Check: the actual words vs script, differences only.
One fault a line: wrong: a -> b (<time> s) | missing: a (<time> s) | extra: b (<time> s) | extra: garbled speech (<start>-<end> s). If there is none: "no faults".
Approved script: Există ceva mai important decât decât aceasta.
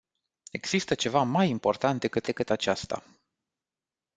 no faults